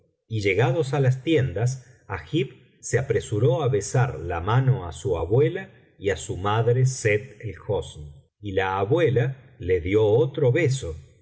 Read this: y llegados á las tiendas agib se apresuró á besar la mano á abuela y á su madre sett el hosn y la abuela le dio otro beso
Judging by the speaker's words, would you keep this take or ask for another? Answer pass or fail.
fail